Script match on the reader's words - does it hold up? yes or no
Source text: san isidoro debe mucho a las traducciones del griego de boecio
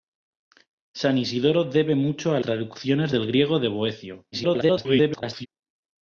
no